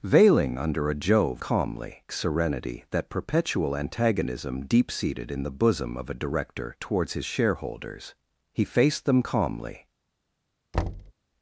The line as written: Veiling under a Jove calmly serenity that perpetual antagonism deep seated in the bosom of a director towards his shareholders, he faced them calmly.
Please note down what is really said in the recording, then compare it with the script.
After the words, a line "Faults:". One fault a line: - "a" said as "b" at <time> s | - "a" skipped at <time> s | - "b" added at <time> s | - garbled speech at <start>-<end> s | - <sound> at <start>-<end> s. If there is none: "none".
Veiling under a Jove calmly serenity that perpetual antagonism deep seated in the bosom of a director towards his shareholders, he faced them calmly.
Faults:
- thud at 10.7-11.1 s